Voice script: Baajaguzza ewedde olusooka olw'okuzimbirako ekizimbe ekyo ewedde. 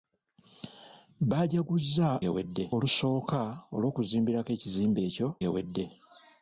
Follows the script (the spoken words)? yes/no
yes